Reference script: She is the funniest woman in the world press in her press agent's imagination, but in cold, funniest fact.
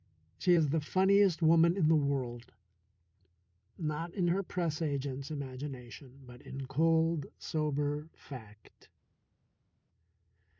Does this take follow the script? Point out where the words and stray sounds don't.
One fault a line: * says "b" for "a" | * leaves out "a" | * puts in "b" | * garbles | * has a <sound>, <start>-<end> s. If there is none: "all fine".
* says "not" for "press"
* says "sober" for "funniest"